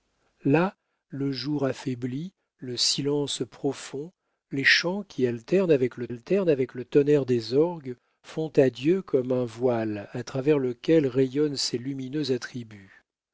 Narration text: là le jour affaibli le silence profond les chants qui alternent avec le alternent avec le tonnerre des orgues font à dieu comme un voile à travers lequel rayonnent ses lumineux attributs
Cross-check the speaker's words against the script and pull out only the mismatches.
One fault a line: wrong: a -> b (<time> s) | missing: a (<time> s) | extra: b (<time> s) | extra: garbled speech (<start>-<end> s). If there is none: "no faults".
no faults